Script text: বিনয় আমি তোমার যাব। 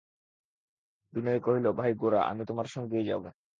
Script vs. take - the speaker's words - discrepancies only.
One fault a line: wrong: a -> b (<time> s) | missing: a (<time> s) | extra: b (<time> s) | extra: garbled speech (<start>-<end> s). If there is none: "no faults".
extra: কহিল ভাই গোরা (1.4 s)
extra: সঙ্গেই (2.7 s)